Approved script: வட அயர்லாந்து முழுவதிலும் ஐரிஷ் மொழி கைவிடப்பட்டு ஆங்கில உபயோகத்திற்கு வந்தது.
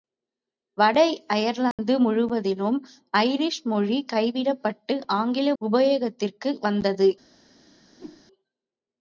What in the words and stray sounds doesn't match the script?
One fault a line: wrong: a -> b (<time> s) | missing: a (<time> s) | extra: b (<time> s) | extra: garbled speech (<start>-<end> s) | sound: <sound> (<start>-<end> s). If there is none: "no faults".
sound: dropout (1.7-1.8 s)
sound: whoosh (8.0-8.2 s)